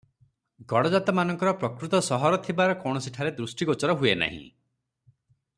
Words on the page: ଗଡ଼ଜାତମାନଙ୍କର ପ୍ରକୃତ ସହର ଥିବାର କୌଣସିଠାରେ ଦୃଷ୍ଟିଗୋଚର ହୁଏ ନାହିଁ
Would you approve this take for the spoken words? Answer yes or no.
yes